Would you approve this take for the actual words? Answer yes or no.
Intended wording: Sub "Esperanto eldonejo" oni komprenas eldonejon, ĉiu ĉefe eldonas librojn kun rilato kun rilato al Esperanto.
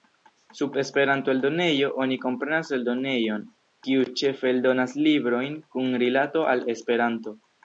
no